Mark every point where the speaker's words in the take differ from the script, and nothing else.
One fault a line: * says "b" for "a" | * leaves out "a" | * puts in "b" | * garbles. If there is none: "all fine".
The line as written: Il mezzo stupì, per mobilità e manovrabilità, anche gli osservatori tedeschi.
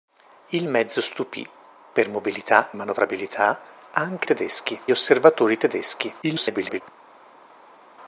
* leaves out "e"
* says "tedeschi" for "gli"
* garbles